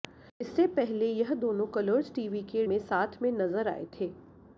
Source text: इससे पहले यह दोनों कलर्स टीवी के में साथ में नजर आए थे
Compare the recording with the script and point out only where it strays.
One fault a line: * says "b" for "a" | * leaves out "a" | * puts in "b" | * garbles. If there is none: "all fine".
all fine